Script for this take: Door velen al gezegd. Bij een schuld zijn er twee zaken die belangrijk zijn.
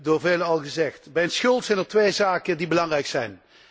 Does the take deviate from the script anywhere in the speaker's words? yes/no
no